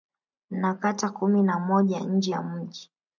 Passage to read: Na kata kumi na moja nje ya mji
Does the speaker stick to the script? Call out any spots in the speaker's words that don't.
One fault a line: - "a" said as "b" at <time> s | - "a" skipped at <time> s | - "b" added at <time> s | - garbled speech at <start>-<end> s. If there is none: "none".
none